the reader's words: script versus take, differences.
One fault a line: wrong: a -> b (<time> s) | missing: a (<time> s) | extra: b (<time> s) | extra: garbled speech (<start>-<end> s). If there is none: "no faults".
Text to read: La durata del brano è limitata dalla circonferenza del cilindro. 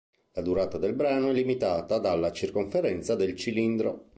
no faults